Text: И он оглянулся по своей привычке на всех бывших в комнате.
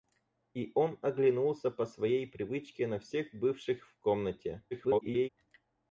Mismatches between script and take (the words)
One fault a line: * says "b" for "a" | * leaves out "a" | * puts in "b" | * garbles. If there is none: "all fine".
* garbles